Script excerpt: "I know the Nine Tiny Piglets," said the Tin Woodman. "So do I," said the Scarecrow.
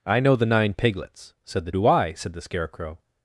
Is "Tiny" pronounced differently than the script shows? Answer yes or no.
yes